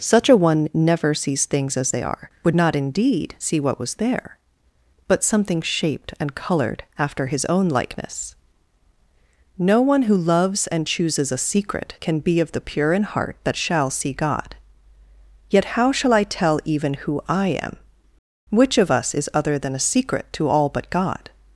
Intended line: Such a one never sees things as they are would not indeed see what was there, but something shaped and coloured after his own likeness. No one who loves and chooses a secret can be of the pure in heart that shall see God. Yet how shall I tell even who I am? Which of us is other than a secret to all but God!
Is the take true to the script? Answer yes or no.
yes